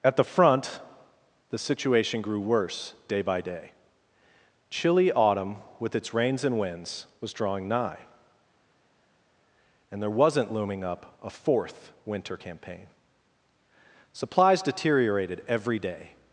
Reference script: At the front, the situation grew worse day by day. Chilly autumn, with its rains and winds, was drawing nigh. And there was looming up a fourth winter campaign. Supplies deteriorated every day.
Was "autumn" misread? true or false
false